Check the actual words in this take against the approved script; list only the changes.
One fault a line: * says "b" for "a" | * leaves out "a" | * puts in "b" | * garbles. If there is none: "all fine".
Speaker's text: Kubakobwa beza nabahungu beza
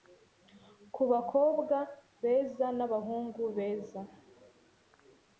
all fine